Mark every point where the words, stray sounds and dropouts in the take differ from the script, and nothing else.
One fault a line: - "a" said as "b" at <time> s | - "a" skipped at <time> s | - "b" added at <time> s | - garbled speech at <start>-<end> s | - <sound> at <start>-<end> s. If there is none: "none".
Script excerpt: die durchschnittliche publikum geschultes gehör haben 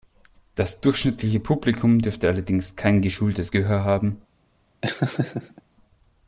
- "die" said as "das" at 0.6 s
- "dürfte allerdings kein" added at 2.0 s
- laugh at 4.8-5.6 s